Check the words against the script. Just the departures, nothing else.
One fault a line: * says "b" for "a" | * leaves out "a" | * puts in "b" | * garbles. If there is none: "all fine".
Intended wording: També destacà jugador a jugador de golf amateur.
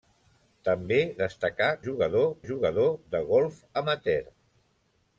all fine